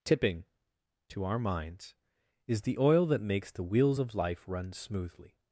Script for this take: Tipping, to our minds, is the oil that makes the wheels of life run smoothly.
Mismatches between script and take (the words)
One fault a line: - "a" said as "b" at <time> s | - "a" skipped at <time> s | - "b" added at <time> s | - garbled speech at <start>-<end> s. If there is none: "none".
none